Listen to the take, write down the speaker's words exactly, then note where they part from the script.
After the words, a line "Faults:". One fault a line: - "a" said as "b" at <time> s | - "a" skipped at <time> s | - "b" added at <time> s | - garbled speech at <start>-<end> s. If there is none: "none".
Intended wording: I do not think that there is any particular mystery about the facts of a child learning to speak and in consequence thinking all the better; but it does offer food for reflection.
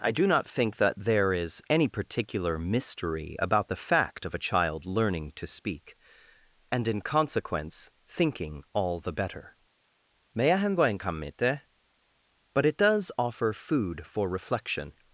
I do not think that there is any particular mystery about the fact of a child learning to speak and in consequence thinking all the better; but it does offer food for reflection.
Faults:
- "facts" said as "fact" at 3.8 s